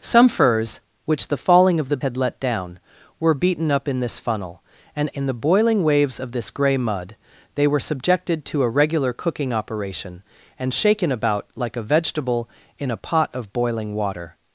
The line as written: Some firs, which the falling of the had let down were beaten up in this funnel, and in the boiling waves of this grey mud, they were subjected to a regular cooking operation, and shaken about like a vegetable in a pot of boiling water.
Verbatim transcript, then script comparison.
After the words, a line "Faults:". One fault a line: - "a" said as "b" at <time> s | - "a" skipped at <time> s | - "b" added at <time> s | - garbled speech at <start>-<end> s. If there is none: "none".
Some firs, which the falling of the had let down were beaten up in this funnel, and in the boiling waves of this grey mud, they were subjected to a regular cooking operation, and shaken about like a vegetable in a pot of boiling water.
Faults:
none